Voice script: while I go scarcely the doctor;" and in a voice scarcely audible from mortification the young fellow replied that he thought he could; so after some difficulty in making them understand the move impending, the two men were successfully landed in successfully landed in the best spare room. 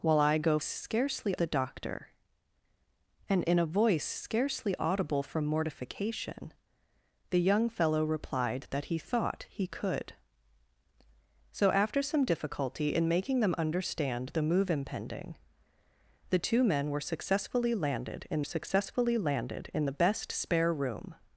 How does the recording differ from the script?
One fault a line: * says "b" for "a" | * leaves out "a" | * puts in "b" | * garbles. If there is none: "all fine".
all fine